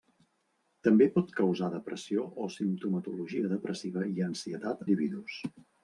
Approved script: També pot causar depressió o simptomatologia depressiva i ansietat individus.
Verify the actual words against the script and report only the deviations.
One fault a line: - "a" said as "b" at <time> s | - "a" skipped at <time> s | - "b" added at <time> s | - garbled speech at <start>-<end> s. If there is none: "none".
none